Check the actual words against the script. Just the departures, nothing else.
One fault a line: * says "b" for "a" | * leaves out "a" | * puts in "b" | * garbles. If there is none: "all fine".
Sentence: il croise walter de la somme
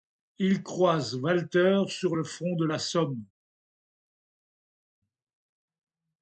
* puts in "sur le front"